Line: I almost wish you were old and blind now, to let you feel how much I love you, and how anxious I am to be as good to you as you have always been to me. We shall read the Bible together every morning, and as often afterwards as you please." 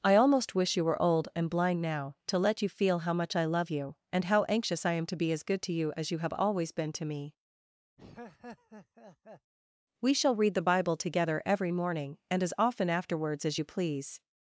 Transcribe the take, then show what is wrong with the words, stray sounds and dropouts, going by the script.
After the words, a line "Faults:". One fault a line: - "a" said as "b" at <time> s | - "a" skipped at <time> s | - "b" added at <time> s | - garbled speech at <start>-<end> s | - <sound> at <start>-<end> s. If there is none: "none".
I almost wish you were old and blind now, to let you feel how much I love you, and how anxious I am to be as good to you as you have always been to me. We shall read the Bible together every morning, and as often afterwards as you please."
Faults:
- laugh at 8.0-9.5 s